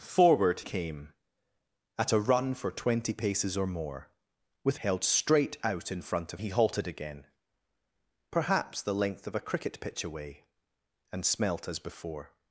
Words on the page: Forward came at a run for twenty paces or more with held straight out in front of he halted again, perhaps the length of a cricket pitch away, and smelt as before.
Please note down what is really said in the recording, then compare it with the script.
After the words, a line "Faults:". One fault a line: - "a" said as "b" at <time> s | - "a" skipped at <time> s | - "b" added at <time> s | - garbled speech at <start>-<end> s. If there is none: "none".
Forward came at a run for twenty paces or more with held straight out in front of he halted again, perhaps the length of a cricket pitch away, and smelt as before.
Faults:
none